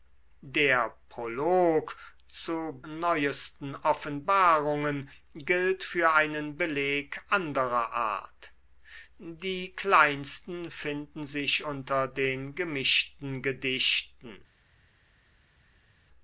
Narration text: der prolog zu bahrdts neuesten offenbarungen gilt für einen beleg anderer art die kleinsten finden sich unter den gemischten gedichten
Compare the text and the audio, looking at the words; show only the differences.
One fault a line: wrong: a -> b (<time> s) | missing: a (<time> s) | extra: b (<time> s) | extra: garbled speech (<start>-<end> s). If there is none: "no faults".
missing: bahrdts (2.8 s)